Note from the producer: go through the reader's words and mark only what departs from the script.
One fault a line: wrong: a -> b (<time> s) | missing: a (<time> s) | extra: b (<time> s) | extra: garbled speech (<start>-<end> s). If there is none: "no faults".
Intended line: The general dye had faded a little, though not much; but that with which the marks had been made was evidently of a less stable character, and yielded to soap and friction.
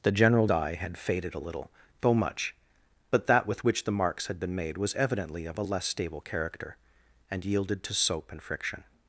missing: not (2.1 s)